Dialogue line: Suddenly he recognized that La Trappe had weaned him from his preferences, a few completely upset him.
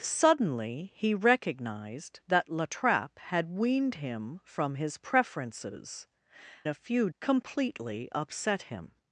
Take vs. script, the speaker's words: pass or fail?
pass